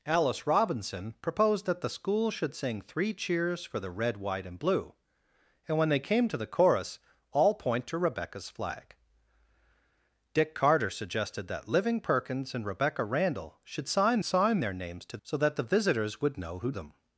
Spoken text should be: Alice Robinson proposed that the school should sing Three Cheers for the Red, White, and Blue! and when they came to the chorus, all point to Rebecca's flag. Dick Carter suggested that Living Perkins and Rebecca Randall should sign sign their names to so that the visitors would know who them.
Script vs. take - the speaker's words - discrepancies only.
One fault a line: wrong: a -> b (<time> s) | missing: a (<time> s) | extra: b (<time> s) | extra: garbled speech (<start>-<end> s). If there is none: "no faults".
no faults